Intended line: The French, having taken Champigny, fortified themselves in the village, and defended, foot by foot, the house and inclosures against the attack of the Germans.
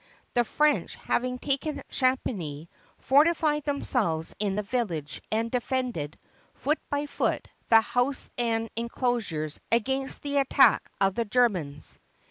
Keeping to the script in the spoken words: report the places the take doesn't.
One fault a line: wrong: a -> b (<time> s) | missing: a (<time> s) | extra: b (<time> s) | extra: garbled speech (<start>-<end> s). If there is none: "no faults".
no faults